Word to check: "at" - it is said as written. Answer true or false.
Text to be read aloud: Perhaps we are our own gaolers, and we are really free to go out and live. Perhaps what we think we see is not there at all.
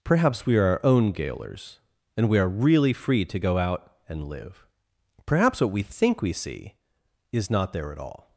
true